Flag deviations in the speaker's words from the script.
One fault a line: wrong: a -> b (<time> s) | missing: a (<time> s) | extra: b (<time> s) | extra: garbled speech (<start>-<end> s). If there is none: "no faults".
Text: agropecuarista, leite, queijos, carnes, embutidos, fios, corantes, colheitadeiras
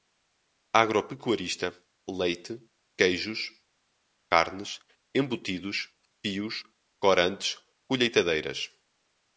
no faults